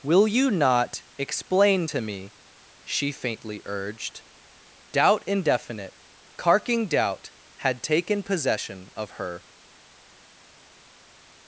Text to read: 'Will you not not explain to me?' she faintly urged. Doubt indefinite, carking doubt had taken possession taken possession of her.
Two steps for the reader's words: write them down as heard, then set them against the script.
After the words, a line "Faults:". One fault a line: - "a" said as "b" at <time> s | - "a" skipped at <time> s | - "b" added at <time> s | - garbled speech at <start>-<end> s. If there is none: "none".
'Will you not explain to me?' she faintly urged. Doubt indefinite, carking doubt had taken possession of her.
Faults:
- "not" skipped at 1.0 s
- "taken possession" skipped at 8.9 s